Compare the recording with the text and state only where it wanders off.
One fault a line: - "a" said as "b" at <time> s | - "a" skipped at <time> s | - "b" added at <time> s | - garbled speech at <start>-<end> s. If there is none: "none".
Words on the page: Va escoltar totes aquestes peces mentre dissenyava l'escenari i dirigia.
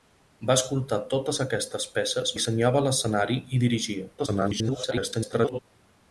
- "mentre" skipped at 2.3 s
- garbled speech at 4.2-5.6 s